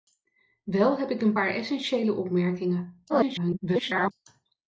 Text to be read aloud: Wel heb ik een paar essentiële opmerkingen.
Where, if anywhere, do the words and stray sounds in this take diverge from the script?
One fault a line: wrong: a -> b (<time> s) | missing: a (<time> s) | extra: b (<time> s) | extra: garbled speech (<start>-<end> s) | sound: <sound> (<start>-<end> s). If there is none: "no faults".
extra: garbled speech (3.1-4.1 s)